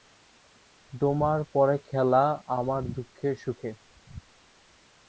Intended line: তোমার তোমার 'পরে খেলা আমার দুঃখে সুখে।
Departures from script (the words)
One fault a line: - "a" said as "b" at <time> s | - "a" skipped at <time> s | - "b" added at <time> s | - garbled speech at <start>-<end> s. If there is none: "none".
- "তোমার" skipped at 1.4 s